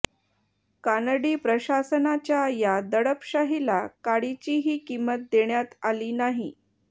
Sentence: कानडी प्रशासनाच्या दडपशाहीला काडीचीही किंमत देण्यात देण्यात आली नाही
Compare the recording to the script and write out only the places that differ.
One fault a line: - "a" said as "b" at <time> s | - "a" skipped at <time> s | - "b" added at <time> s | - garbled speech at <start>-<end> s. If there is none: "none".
- "या" added at 2.5 s
- "देण्यात" skipped at 5.8 s